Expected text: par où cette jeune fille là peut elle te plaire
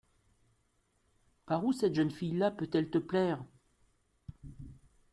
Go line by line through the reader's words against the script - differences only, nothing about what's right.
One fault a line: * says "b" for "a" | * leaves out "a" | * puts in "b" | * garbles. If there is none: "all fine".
all fine